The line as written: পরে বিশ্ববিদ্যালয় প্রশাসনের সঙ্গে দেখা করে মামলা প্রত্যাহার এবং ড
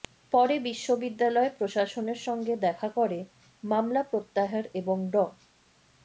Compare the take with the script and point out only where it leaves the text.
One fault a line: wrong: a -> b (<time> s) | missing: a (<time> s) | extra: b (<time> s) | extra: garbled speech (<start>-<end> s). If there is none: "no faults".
no faults